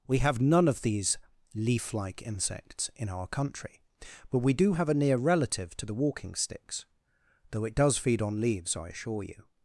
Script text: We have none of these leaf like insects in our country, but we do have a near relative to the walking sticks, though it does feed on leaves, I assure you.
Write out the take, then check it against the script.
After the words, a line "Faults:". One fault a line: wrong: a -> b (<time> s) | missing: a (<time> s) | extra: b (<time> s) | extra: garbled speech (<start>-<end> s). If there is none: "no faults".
We have none of these leaf like insects in our country, but we do have a near relative to the walking sticks, though it does feed on leaves, I assure you.
Faults:
no faults